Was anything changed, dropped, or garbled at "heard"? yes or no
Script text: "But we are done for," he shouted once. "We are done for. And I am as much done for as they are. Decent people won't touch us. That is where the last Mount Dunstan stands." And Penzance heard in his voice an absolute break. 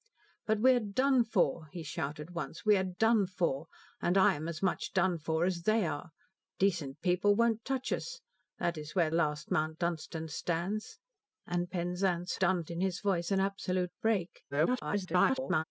yes